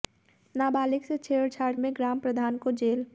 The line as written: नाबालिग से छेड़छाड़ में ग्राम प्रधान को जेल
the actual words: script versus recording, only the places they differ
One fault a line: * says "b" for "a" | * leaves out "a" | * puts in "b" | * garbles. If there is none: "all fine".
all fine